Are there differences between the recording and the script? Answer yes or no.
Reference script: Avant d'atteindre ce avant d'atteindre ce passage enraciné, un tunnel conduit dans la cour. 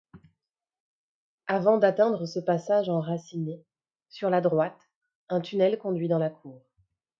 yes